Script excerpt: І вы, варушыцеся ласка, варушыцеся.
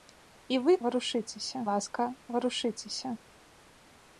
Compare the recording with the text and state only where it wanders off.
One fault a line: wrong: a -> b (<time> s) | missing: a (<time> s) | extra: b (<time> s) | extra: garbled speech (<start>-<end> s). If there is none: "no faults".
no faults